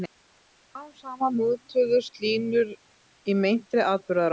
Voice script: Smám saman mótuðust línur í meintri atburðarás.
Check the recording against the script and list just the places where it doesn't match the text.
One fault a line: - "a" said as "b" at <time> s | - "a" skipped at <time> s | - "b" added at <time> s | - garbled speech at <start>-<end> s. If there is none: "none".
none